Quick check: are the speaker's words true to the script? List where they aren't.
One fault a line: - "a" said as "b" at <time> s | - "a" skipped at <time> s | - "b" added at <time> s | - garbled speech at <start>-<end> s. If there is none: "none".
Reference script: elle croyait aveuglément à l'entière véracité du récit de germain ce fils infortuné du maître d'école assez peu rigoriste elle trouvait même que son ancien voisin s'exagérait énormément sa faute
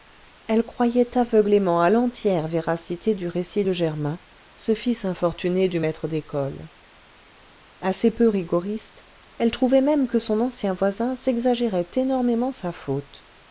none